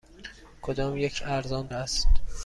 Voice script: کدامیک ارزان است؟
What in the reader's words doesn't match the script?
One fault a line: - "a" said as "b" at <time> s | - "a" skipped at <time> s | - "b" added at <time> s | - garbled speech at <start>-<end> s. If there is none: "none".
none